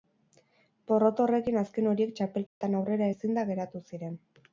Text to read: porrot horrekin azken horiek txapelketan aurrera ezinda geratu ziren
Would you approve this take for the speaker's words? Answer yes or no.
yes